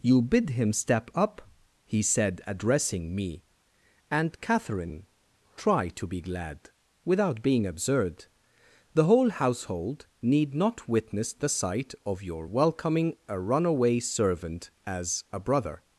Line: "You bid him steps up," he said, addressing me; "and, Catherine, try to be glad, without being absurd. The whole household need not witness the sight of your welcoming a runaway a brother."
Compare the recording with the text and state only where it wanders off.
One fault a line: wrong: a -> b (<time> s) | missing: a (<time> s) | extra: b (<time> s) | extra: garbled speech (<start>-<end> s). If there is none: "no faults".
wrong: steps -> step (0.7 s)
extra: servant as (14.0 s)